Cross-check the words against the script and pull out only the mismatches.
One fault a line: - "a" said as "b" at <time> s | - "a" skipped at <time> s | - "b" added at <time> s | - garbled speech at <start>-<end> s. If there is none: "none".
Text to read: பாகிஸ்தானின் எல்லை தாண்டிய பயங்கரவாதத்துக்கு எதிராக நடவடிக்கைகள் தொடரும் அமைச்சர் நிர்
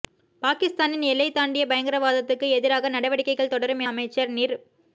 none